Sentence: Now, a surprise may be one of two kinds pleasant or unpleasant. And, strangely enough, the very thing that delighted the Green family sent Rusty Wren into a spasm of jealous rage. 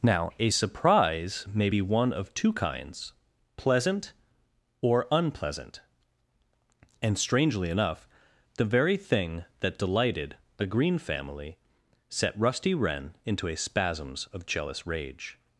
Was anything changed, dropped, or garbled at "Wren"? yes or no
no